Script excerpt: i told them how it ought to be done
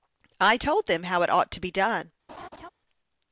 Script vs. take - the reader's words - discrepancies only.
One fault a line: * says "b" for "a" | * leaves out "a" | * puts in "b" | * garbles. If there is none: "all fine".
all fine